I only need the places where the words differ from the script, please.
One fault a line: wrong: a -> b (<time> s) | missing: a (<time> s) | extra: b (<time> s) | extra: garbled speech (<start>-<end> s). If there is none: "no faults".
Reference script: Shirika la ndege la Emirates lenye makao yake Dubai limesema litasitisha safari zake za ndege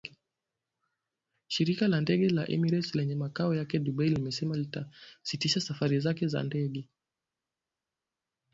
no faults